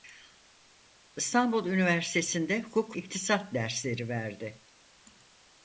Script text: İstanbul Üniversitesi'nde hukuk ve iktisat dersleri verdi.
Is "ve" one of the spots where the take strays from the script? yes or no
yes